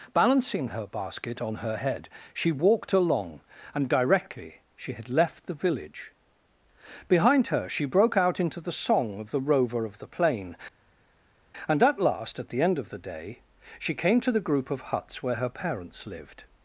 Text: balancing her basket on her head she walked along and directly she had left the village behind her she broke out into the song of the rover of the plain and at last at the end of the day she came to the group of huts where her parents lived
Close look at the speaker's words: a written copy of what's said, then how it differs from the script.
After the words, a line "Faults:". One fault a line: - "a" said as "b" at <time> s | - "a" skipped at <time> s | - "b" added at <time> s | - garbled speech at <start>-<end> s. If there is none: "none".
balancing her basket on her head she walked along and directly she had left the village behind her she broke out into the song of the rover of the plain and at last at the end of the day she came to the group of huts where her parents lived
Faults:
none